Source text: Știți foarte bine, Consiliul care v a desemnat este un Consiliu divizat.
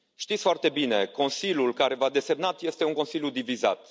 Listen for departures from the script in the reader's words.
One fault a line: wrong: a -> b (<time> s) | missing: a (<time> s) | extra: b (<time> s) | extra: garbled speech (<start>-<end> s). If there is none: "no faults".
no faults